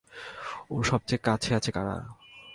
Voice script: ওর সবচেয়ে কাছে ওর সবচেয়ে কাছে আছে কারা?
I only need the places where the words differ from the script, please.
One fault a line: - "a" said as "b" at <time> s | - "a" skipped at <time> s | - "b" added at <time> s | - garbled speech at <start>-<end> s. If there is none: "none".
- "ওর সবচেয়ে কাছে" skipped at 1.5 s